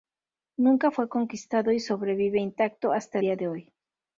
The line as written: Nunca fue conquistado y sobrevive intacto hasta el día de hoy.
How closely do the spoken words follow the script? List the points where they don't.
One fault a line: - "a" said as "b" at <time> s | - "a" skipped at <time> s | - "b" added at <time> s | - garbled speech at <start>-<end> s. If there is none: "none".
- "el" skipped at 3.2 s